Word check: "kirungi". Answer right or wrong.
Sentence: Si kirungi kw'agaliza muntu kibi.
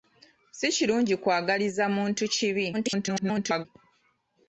right